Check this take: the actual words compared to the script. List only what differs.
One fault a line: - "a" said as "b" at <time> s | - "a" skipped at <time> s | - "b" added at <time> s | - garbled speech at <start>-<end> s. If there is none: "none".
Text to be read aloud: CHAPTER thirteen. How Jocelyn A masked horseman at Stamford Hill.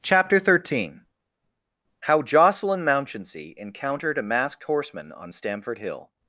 - "Mounchensey encountered" added at 2.8 s
- "at" said as "on" at 5.1 s